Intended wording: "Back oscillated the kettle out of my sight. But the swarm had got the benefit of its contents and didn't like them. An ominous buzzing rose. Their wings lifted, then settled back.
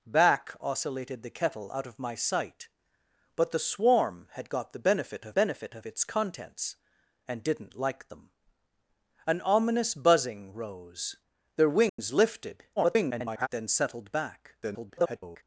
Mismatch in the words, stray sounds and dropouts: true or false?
true